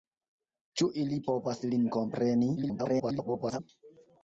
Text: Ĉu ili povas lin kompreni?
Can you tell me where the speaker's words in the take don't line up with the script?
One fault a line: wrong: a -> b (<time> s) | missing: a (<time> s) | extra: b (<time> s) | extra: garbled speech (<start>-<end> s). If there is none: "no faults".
extra: garbled speech (2.6-3.6 s)